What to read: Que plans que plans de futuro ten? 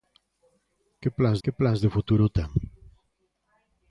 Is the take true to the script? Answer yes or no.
yes